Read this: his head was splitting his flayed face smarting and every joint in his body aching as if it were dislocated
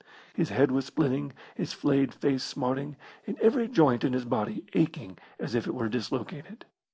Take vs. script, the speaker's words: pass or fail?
pass